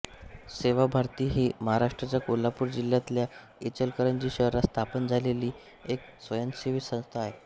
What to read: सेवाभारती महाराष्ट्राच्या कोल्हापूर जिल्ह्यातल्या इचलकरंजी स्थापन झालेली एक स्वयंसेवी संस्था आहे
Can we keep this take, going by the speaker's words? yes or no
no